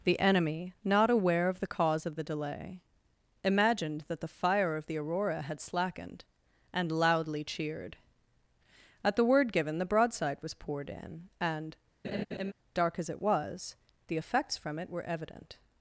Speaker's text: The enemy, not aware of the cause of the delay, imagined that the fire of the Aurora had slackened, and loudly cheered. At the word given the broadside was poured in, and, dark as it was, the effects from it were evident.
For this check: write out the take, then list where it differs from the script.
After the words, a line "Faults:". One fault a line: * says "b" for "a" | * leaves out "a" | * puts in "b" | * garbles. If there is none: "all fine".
The enemy, not aware of the cause of the delay, imagined that the fire of the Aurora had slackened, and loudly cheered. At the word given the broadside was poured in, and, dark as it was, the effects from it were evident.
Faults:
all fine